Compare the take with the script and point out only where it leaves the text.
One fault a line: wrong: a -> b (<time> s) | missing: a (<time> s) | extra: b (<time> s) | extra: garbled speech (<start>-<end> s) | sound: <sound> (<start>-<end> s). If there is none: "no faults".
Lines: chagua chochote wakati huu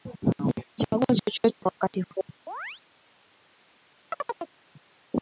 sound: chirp (2.5-2.8 s)
sound: chirp (4.1-4.5 s)